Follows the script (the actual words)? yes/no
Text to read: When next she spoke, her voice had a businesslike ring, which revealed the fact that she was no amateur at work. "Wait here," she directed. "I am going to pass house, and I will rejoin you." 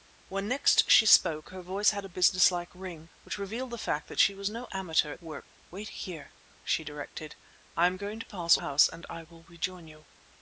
yes